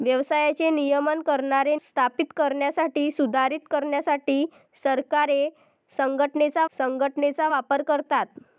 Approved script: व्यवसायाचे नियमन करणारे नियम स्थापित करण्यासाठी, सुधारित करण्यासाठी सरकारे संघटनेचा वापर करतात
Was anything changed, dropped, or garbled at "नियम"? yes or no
yes